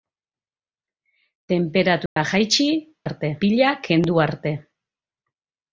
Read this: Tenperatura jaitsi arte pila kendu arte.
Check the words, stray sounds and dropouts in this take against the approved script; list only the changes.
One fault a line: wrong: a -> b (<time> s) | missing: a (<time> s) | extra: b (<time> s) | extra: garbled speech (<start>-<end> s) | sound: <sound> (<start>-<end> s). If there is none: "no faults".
sound: dropout (2.1-2.2 s)